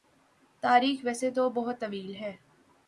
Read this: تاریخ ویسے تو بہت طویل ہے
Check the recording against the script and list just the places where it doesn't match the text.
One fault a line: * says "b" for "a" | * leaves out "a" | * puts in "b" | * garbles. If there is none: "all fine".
all fine